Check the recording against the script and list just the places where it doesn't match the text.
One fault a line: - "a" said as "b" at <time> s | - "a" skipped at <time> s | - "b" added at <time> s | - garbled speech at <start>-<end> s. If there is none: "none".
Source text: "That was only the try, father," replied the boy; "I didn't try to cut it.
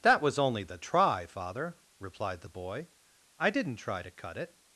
none